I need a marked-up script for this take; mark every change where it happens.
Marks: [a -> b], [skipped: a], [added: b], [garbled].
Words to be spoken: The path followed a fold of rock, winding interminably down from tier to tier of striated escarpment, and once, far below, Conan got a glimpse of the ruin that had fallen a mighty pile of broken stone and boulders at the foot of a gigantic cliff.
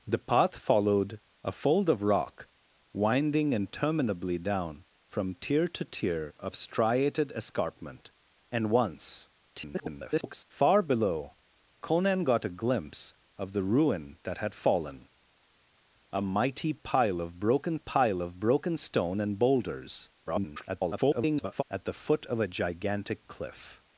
The path followed a fold of rock, winding interminably down from tier to tier of striated escarpment, and once, [garbled] far below, Conan got a glimpse of the ruin that had fallen a mighty pile of broken [added: pile of broken] stone and boulders [garbled] at the foot of a gigantic cliff.